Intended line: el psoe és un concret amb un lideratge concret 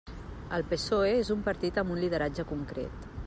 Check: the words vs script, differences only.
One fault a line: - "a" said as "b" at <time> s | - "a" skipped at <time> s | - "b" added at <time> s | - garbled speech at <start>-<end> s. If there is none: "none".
- "concret" said as "partit" at 1.5 s